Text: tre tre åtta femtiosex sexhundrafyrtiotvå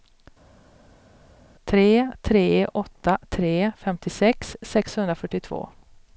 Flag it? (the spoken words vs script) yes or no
yes